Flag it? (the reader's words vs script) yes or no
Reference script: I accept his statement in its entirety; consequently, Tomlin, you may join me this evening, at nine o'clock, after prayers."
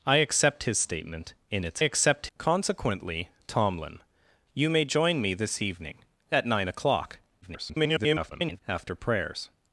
yes